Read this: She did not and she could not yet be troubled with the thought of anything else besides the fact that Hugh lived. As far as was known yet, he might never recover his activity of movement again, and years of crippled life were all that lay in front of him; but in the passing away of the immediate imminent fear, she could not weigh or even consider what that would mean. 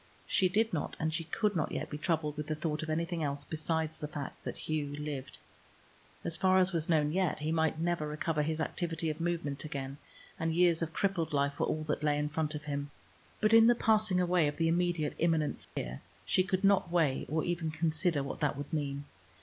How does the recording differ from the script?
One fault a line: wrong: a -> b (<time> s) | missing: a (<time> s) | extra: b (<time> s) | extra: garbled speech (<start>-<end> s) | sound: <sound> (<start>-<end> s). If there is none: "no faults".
sound: dropout (15.6-15.8 s)